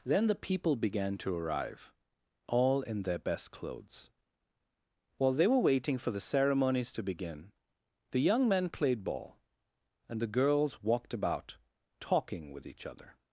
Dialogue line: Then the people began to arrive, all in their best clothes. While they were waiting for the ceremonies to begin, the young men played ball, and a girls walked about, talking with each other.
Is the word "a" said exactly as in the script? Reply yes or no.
no